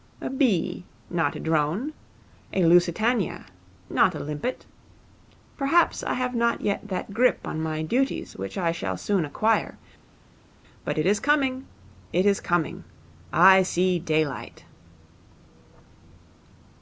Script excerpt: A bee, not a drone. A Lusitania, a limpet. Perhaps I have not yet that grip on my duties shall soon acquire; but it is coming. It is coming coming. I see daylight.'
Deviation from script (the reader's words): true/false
true